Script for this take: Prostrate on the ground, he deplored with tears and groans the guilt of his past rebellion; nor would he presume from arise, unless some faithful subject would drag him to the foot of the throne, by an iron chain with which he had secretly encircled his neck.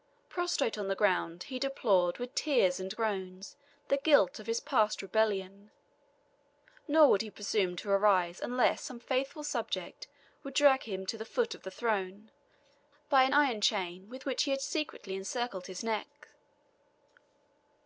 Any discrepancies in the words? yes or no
yes